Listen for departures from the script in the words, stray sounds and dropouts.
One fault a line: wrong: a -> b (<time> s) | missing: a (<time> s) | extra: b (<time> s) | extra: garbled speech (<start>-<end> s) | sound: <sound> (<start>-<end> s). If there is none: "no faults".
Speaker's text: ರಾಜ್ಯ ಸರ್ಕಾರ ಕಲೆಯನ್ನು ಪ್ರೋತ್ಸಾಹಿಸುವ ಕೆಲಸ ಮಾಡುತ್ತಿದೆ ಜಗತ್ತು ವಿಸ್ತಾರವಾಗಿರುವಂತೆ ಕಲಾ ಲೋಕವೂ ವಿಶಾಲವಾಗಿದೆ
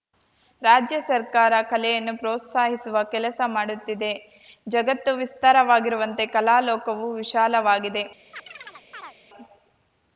sound: chirp (8.3-9.2 s)